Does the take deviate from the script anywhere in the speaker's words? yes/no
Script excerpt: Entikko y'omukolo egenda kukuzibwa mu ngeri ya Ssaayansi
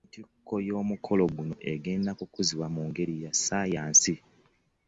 yes